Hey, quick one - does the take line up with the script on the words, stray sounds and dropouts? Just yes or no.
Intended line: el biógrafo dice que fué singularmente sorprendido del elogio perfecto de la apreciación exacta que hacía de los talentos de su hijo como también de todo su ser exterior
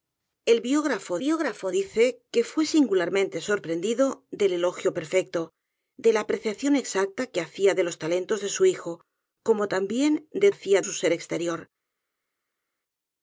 no